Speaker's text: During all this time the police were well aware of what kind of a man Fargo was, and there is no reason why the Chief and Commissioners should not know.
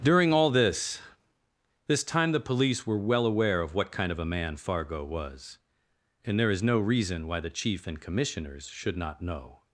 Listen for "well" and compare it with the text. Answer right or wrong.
right